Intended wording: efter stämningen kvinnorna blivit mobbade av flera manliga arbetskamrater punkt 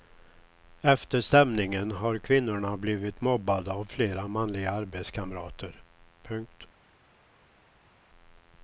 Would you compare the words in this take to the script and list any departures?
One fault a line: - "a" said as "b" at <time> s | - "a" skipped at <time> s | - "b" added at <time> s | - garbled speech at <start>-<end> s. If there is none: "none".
- "har" added at 1.9 s